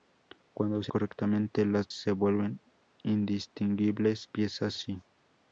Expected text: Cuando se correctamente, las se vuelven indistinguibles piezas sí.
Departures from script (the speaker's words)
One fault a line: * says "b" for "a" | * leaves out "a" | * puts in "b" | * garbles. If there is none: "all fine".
all fine